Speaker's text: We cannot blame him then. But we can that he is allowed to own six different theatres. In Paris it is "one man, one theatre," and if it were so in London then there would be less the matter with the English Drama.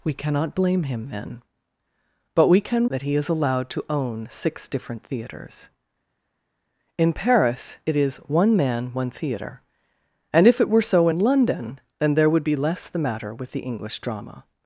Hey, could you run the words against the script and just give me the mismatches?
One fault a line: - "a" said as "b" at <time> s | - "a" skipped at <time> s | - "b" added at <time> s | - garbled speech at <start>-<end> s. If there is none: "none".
none